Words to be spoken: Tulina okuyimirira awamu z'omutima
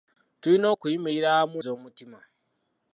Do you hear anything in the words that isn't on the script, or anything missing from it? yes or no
no